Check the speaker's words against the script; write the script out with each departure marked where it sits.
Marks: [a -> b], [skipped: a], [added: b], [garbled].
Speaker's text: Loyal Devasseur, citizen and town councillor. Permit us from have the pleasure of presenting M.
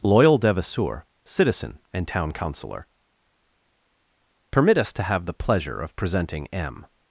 Loyal Devasseur, citizen and town councillor. Permit us [from -> to] have the pleasure of presenting M.